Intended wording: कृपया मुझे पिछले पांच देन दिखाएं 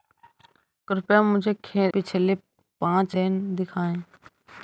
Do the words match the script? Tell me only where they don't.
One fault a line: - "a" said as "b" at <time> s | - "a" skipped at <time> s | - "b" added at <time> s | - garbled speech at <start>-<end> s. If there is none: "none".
none